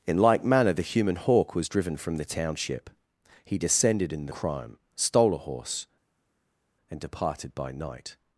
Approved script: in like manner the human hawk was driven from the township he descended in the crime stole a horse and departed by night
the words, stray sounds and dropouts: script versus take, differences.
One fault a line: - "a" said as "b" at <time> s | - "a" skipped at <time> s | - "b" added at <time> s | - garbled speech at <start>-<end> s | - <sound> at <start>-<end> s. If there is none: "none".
none